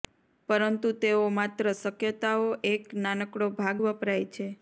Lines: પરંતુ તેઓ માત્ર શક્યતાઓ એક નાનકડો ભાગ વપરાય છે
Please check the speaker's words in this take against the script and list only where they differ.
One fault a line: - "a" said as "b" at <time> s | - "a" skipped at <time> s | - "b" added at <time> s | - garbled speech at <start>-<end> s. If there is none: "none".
none